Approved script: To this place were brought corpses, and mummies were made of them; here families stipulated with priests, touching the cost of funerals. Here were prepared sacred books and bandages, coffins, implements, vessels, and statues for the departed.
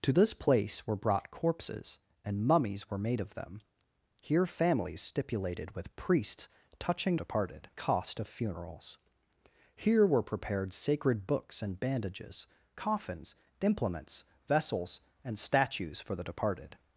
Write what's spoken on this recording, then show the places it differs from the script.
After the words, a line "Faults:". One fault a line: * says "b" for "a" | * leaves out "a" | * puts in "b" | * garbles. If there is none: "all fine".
To this place were brought corpses, and mummies were made of them; here families stipulated with priests, touching departed cost of funerals. Here were prepared sacred books and bandages, coffins, implements, vessels, and statues for the departed.
Faults:
* says "departed" for "the"